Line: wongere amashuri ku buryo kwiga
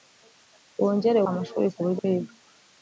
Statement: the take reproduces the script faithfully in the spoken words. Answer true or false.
true